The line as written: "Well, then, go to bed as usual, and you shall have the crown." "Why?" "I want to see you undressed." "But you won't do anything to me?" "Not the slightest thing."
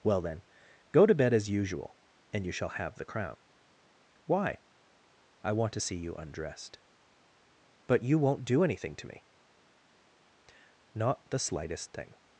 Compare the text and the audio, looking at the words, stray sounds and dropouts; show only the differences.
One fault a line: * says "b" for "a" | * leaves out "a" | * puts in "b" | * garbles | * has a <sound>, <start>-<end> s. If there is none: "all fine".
all fine